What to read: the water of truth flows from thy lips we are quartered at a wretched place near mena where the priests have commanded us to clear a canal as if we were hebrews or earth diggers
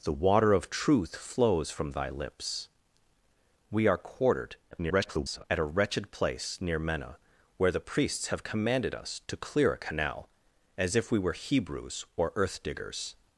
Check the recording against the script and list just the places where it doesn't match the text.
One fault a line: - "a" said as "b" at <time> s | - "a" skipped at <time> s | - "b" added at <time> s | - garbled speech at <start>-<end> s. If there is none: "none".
- garbled speech at 4.7-5.4 s